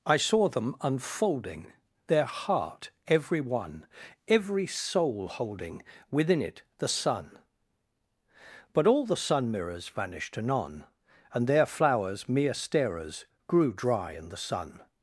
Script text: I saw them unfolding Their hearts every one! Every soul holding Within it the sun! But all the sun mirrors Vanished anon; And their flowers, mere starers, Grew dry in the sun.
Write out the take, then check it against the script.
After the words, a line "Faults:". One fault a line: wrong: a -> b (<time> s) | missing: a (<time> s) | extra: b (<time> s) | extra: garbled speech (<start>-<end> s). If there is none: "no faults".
I saw them unfolding Their heart every one! Every soul holding Within it the sun! But all the sun mirrors Vanished anon; And their flowers, mere starers, Grew dry in the sun.
Faults:
wrong: hearts -> heart (2.2 s)